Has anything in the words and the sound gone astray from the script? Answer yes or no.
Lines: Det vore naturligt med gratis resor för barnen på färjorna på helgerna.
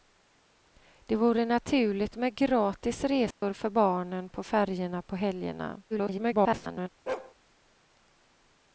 yes